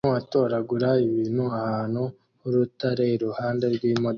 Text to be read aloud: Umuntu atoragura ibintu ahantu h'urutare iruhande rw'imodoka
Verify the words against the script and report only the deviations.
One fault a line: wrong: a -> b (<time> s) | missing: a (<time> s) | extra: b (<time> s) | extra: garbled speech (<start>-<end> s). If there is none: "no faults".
no faults